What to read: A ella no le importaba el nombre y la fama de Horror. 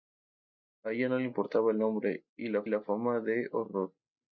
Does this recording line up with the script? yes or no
no